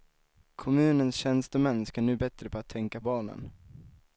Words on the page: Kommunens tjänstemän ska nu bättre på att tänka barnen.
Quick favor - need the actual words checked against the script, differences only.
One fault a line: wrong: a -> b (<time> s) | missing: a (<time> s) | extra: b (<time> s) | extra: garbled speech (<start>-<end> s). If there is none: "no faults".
no faults